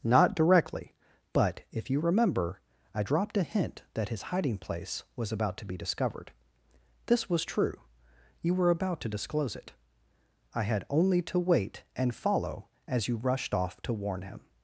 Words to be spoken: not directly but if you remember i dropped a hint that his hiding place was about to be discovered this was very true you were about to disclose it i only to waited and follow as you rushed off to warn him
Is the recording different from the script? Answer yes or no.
yes